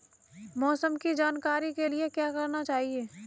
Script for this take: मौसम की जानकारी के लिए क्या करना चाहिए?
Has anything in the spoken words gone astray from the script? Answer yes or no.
no